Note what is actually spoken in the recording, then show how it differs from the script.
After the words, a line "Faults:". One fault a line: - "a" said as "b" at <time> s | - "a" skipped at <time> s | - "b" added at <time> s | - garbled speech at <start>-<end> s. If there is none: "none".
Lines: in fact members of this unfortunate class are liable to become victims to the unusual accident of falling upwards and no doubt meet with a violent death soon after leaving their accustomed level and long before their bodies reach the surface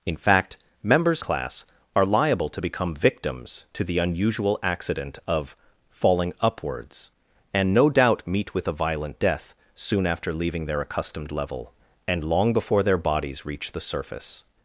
in fact members class are liable to become victims to the unusual accident of falling upwards and no doubt meet with a violent death soon after leaving their accustomed level and long before their bodies reach the surface
Faults:
- "of this unfortunate" skipped at 1.2 s